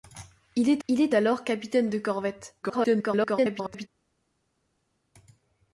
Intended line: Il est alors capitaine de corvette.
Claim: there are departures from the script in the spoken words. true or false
true